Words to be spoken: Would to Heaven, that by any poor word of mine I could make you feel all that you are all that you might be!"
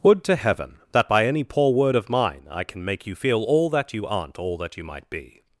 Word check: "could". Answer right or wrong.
wrong